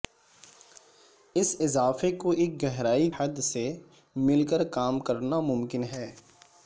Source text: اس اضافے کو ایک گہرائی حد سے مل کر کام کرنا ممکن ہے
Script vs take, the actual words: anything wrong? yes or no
no